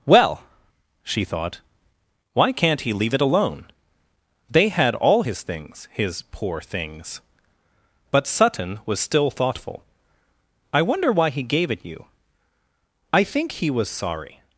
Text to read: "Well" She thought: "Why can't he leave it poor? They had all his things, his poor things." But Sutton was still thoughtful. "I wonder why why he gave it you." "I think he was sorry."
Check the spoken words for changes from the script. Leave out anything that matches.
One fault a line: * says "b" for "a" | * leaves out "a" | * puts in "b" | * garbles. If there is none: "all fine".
* says "alone" for "poor"
* leaves out "why"